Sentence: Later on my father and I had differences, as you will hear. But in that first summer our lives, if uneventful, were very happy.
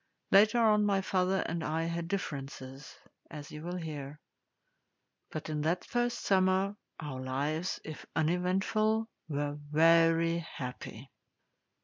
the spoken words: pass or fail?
pass